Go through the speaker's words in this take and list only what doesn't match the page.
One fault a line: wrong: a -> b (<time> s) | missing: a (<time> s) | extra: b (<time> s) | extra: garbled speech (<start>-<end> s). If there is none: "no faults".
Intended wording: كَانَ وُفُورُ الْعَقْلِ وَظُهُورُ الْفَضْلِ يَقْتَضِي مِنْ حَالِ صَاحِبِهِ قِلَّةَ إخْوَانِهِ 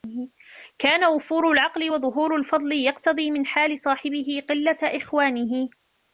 no faults